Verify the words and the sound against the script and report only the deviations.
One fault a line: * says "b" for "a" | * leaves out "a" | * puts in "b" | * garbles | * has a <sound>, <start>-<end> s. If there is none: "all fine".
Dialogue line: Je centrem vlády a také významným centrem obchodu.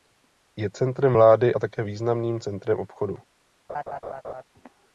* has a laugh, 3.7-4.4 s